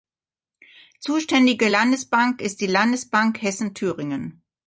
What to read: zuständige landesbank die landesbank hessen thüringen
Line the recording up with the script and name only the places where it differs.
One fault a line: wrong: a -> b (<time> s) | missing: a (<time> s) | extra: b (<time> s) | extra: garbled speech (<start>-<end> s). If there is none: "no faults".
extra: ist (2.4 s)